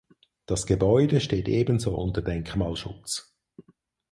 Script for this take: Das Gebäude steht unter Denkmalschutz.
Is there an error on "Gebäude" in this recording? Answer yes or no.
no